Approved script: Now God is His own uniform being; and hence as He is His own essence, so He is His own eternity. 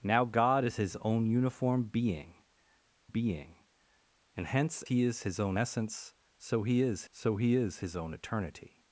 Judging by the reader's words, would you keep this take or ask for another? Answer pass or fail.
fail